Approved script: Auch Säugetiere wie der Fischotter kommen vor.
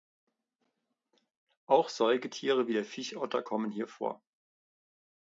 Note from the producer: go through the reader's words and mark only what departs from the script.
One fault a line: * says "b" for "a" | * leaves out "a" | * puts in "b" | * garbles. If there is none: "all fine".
* puts in "hier"